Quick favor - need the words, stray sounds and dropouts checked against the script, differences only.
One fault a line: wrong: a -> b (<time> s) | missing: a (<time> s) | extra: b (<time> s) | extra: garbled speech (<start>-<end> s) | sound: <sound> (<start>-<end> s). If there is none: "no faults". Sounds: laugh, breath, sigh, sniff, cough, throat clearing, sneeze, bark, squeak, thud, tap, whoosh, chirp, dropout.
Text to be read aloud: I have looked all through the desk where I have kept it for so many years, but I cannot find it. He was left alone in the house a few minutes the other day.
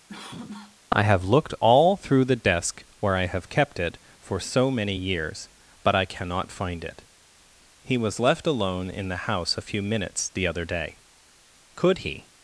sound: cough (0.1-0.8 s)
extra: Could he (11.8 s)